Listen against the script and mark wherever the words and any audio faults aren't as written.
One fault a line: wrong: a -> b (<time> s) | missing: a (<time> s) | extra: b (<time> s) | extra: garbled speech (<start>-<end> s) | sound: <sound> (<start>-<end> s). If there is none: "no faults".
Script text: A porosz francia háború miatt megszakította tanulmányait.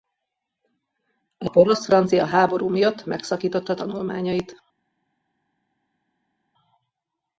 no faults